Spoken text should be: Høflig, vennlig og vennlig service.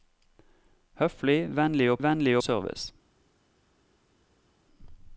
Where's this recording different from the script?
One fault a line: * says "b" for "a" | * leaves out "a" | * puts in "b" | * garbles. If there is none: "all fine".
all fine